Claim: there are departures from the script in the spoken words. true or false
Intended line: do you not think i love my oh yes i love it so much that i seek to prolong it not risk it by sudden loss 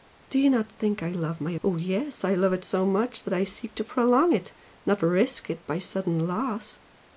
false